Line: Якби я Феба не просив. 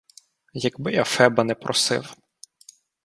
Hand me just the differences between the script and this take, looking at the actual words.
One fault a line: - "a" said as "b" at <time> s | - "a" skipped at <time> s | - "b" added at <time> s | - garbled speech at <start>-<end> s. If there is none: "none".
none